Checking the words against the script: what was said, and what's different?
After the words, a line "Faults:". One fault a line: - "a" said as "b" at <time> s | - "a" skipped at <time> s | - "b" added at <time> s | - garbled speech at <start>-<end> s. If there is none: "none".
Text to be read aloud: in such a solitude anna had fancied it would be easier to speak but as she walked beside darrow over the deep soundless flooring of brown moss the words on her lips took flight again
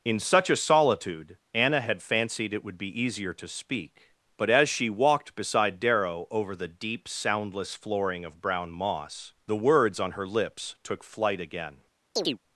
in such a solitude anna had fancied it would be easier to speak but as she walked beside darrow over the deep soundless flooring of brown moss the words on her lips took flight again
Faults:
none